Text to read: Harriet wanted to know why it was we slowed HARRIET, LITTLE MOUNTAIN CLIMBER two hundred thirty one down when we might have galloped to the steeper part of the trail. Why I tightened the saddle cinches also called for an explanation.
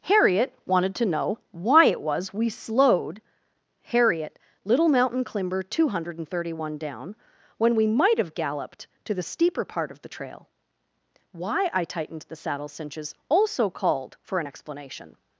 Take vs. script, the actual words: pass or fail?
pass